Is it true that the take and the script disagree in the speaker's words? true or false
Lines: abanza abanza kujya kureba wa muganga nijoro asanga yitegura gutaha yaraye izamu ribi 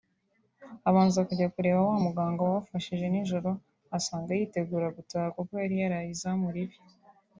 true